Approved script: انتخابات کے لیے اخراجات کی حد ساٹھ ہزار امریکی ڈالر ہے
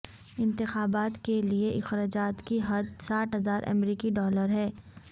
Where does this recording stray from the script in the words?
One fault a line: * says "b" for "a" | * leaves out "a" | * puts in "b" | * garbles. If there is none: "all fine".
all fine